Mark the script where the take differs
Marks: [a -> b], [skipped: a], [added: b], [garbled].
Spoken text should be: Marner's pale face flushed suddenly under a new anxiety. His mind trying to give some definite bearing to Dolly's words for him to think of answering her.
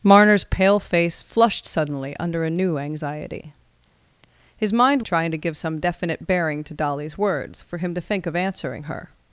Marner's pale face flushed suddenly under a new anxiety. His mind trying to give some definite bearing to Dolly's words for him to think of answering her.